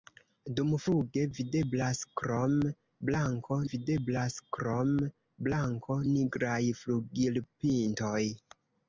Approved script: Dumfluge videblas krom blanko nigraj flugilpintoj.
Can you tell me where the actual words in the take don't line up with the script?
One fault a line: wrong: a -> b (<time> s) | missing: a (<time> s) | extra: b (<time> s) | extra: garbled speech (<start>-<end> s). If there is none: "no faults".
extra: videblas krom blanko (3.7 s)